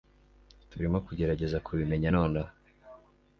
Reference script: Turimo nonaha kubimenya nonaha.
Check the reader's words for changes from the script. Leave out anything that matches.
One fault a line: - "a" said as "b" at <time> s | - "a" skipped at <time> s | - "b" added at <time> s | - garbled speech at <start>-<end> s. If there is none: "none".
- "nonaha" said as "kugerageza" at 1.1 s